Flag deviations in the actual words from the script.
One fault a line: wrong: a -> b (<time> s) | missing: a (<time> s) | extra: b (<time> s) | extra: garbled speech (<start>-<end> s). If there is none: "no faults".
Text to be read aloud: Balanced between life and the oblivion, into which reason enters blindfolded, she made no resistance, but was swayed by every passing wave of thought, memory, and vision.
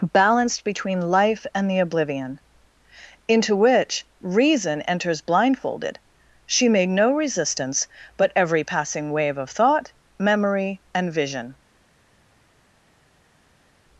missing: was swayed by (8.3 s)